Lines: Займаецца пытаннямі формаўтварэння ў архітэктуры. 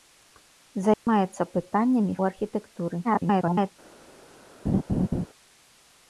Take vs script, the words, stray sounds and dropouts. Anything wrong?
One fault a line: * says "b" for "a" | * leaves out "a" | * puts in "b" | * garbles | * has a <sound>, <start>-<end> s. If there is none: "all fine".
* has a dropout, 0.9-1.1 s
* leaves out "формаўтварэння"
* garbles
* has a laugh, 4.7-5.3 s